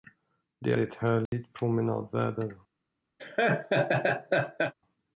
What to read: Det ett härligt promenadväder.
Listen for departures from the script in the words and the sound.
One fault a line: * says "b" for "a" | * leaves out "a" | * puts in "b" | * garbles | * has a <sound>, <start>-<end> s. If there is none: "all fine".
* has a dropout, 1.3-1.3 s
* has a laugh, 3.2-4.7 s